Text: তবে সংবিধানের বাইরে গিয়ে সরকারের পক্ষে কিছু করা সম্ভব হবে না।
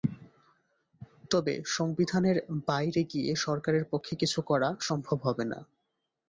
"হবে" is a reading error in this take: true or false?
false